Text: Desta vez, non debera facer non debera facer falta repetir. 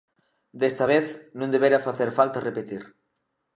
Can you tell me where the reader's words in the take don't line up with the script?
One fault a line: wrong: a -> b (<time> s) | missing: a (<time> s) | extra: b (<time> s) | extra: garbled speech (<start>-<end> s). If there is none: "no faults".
missing: non debera facer (2.1 s)